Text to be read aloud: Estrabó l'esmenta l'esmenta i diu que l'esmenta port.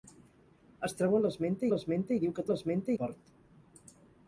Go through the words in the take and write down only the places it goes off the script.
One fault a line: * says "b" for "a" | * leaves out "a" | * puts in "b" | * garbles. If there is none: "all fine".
all fine